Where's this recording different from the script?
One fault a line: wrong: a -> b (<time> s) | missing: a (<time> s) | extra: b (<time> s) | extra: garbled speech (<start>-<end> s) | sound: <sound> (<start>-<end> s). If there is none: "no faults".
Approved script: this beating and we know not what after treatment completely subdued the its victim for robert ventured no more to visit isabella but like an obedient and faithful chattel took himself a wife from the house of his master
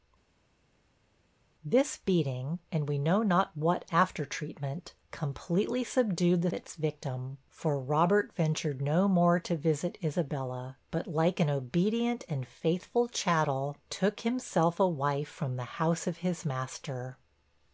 no faults